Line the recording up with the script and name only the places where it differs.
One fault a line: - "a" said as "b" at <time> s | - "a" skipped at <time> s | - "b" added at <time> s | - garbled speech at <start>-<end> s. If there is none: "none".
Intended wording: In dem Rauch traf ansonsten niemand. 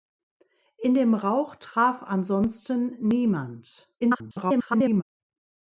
- garbled speech at 4.0-5.0 s